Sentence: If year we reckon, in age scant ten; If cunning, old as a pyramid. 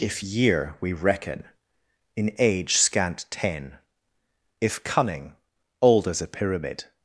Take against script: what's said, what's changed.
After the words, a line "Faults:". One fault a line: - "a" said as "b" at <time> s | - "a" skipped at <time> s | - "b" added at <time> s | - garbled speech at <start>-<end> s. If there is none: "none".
If year we reckon, in age scant ten; If cunning, old as a pyramid.
Faults:
none